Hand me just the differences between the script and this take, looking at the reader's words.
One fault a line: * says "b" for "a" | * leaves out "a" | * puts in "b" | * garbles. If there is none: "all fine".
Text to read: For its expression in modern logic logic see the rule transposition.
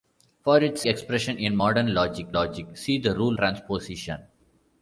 all fine